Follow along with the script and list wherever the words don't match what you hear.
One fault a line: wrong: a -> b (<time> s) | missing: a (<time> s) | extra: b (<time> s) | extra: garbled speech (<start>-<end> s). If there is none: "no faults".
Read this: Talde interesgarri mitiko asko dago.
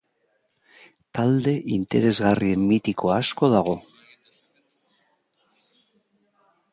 no faults